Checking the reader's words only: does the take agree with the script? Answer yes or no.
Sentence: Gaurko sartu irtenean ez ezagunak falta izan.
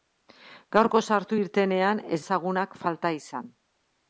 yes